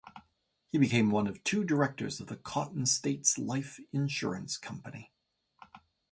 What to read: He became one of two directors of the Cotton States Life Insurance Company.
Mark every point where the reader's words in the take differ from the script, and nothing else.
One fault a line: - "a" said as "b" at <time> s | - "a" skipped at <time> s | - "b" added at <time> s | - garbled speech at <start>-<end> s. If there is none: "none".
none